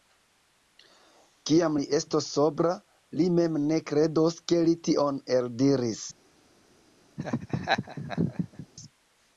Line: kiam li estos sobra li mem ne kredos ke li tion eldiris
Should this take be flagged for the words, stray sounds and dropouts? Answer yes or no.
yes